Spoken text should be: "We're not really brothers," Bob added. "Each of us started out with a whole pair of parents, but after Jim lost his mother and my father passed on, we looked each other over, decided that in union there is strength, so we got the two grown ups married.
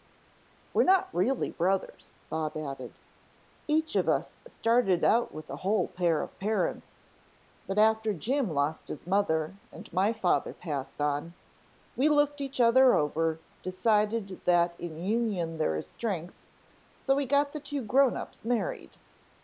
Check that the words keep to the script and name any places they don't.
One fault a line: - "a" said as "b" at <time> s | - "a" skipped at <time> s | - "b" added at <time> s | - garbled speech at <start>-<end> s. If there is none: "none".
none